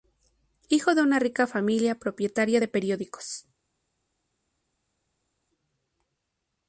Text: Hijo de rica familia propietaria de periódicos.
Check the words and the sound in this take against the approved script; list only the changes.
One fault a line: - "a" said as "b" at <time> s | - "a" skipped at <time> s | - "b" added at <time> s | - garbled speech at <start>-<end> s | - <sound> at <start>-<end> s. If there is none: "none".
- "una" added at 1.0 s